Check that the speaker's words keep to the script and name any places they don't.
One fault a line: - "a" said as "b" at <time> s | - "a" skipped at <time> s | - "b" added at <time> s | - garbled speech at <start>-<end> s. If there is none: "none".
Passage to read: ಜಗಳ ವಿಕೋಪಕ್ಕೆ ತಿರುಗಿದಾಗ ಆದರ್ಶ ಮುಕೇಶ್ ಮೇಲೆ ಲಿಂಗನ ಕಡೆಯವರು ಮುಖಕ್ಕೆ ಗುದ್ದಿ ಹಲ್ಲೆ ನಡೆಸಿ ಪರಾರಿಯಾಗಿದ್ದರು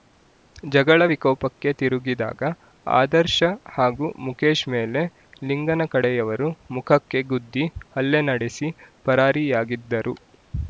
- "ಹಾಗೂ" added at 3.7 s